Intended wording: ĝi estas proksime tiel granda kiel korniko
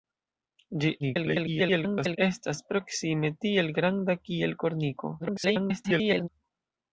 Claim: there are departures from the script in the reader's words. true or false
true